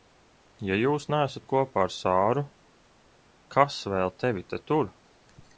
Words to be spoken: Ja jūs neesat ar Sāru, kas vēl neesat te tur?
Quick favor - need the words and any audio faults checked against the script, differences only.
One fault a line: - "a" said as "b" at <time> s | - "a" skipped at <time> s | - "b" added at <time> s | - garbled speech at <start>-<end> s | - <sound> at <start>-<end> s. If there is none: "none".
- "kopā" added at 1.5 s
- "neesat" said as "tevi" at 4.2 s